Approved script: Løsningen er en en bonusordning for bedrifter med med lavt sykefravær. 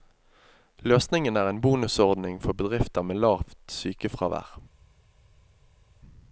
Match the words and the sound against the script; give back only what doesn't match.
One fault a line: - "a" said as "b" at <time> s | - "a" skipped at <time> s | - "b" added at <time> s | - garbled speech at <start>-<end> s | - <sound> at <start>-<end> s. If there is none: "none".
- "en" skipped at 1.6 s
- "med" skipped at 3.2 s